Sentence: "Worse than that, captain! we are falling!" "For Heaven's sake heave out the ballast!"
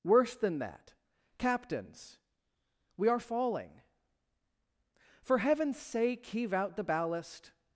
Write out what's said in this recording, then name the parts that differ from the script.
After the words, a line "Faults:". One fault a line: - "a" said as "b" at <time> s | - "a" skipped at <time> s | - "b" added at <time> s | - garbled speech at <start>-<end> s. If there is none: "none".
"Worse than that, captains! we are falling!" "For Heaven's sake heave out the ballast!"
Faults:
- "captain" said as "captains" at 1.4 s